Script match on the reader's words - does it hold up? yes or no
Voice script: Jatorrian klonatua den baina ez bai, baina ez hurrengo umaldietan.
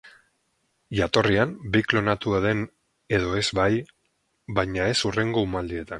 no